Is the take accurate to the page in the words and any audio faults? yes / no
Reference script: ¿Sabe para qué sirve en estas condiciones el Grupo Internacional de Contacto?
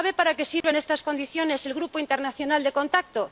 no